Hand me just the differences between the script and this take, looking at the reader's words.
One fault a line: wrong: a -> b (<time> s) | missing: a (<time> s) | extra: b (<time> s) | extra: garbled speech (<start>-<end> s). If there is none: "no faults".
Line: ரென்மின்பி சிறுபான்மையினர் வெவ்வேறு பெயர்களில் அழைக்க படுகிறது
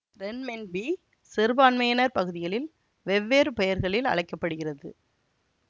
extra: பகுதிகளில் (2.1 s)